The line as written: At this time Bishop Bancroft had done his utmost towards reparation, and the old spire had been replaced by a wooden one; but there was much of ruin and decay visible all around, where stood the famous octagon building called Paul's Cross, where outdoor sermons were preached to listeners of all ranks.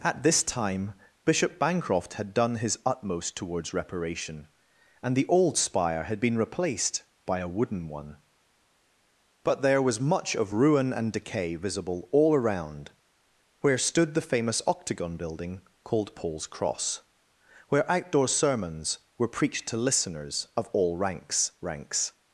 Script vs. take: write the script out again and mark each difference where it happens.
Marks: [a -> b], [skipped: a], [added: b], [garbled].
At this time Bishop Bancroft had done his utmost towards reparation, and the old spire had been replaced by a wooden one; but there was much of ruin and decay visible all around, where stood the famous octagon building called Paul's Cross, where outdoor sermons were preached to listeners of all ranks. [added: ranks]